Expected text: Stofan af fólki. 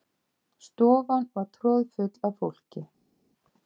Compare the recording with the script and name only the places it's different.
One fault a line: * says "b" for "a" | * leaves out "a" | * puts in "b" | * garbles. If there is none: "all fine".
* puts in "var troðfull"